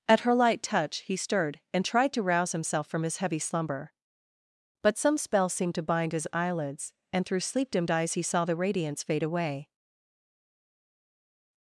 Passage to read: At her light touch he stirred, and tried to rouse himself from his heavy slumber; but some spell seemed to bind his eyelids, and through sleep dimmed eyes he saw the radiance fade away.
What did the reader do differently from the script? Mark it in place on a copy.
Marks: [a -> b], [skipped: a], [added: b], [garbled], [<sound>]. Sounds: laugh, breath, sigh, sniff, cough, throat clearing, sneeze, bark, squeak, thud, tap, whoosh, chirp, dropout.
At her light touch he stirred, and tried to rouse himself from his heavy slumber; but some spell seemed to bind his eyelids, and through sleep dimmed eyes he saw the radiance fade away.